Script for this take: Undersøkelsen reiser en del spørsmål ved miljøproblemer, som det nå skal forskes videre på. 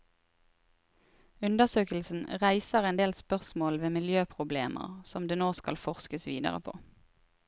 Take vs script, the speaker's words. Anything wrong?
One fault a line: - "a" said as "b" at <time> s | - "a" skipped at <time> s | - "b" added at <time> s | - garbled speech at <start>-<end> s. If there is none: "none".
none